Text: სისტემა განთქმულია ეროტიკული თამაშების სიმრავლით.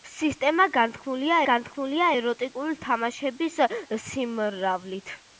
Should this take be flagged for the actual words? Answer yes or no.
yes